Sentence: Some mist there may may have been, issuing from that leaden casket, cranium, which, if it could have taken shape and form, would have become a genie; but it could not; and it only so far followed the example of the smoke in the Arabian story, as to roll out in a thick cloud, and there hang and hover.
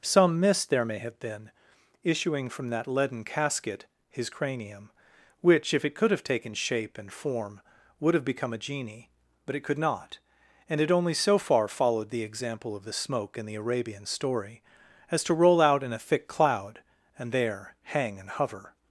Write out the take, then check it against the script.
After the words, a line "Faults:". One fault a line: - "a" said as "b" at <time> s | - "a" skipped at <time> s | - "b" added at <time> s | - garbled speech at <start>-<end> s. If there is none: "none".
Some mist there may have been, issuing from that leaden casket, his cranium, which, if it could have taken shape and form, would have become a genie; but it could not; and it only so far followed the example of the smoke in the Arabian story, as to roll out in a thick cloud, and there hang and hover.
Faults:
- "may" skipped at 1.0 s
- "his" added at 4.1 s